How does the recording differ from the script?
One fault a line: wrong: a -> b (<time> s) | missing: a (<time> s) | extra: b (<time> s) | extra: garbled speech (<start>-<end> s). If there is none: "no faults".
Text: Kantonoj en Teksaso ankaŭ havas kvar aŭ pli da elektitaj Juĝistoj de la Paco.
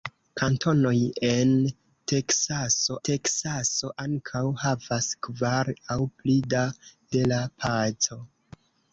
extra: Teksaso (3.1 s)
missing: elektitaj Juĝistoj (6.6 s)